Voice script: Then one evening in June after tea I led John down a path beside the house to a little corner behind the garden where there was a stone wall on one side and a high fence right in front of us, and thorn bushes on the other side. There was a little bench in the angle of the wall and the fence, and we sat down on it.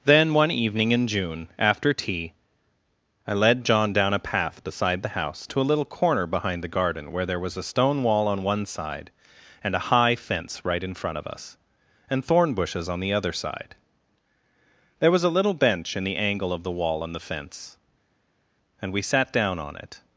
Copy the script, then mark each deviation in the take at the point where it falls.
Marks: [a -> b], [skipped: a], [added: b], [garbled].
Then one evening in June after tea I led John down a path beside the house to a little corner behind the garden where there was a stone wall on one side and a high fence right in front of us, and thorn bushes on the other side. There was a little bench in the angle of the wall and the fence, and we sat down on it.